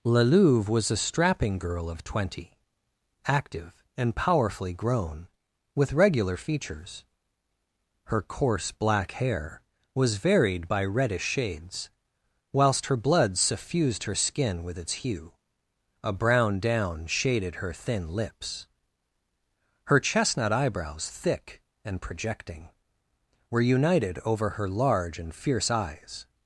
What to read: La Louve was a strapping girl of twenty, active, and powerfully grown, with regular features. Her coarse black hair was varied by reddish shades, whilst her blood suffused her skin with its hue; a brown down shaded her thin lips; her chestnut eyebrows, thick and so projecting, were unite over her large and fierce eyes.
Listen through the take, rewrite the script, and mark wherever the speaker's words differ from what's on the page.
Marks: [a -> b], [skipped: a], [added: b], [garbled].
La Louve was a strapping girl of twenty, active, and powerfully grown, with regular features. Her coarse black hair was varied by reddish shades, whilst her blood suffused her skin with its hue; a brown down shaded her thin lips; her chestnut eyebrows, thick and [skipped: so] projecting, were [unite -> united] over her large and fierce eyes.